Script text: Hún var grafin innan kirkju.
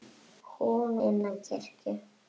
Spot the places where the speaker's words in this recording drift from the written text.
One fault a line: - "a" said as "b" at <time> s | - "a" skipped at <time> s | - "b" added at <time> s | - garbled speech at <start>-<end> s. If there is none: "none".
- "var grafin" skipped at 0.9 s